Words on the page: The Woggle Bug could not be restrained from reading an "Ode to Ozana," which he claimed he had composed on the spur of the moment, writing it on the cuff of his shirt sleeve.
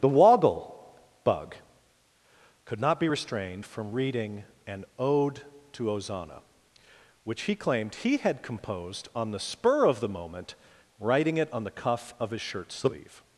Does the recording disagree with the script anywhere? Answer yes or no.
no